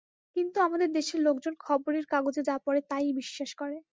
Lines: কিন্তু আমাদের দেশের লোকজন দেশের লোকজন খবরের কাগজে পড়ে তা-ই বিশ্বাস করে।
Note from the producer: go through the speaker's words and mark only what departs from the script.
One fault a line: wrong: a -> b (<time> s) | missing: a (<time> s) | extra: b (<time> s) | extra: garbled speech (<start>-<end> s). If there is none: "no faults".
missing: দেশের লোকজন (1.5 s)
extra: যা (2.4 s)